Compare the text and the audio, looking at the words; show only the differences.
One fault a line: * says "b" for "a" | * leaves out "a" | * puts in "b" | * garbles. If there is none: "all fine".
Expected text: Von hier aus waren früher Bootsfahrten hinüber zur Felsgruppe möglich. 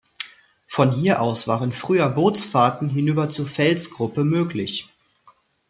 all fine